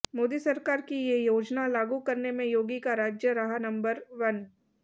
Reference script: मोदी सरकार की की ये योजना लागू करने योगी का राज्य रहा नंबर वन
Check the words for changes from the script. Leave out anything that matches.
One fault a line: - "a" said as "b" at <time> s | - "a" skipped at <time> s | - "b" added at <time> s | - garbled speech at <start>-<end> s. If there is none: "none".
- "की" skipped at 0.9 s
- "में" added at 2.3 s